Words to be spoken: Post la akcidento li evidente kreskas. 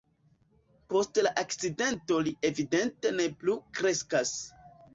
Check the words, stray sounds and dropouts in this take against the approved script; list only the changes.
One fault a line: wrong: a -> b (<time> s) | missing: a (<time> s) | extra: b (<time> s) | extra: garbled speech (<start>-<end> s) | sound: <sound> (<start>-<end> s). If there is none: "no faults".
extra: ne plu (3.2 s)